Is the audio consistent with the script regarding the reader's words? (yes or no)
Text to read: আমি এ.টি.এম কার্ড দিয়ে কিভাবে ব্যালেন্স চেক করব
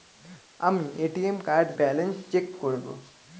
no